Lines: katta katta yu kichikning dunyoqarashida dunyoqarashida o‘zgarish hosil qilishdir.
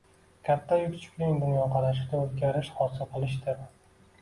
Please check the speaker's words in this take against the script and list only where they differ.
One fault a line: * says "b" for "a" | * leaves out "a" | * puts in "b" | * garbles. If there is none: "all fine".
* leaves out "katta"
* leaves out "dunyoqarashida"